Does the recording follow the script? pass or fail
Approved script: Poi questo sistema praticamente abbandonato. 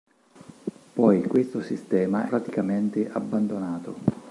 pass